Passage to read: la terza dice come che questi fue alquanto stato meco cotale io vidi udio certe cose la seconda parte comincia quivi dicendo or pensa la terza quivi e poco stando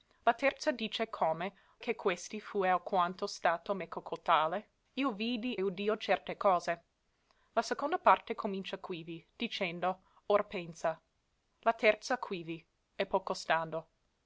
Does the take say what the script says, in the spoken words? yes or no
yes